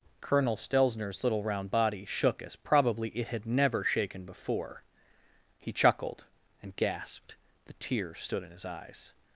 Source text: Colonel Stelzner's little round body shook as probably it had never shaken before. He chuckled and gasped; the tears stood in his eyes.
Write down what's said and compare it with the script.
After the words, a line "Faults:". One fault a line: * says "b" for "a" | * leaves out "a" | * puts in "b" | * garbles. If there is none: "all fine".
Colonel Stelzner's little round body shook as probably it had never shaken before. He chuckled and gasped; the tears stood in his eyes.
Faults:
all fine